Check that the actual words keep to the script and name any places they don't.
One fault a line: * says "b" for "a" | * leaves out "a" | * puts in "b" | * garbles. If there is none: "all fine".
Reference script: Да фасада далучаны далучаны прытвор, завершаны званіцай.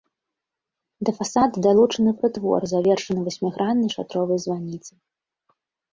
* leaves out "далучаны"
* puts in "васьміграннай шатровай"